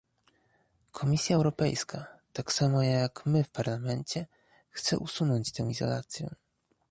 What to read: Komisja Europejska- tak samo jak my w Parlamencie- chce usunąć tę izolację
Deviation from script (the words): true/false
false